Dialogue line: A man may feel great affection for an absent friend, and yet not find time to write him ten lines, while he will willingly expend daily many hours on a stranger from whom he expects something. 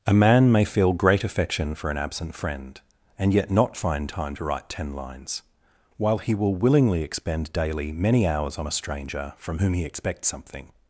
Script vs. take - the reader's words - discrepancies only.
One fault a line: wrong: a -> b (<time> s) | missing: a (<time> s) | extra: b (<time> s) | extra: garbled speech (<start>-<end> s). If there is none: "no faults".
missing: him (4.7 s)